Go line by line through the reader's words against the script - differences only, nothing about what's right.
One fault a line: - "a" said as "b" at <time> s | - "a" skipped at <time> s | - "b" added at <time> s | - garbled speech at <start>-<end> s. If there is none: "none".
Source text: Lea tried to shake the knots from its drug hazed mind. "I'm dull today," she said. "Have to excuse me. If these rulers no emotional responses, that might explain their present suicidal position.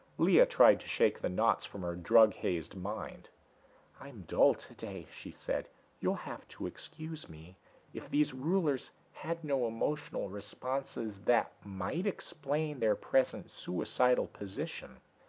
- "its" said as "her" at 1.8 s
- "You'll" added at 6.0 s
- "had" added at 9.1 s